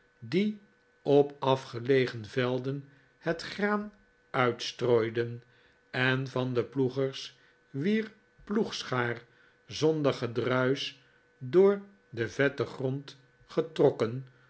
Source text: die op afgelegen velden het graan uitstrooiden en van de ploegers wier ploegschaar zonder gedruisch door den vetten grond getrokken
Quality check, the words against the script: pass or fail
pass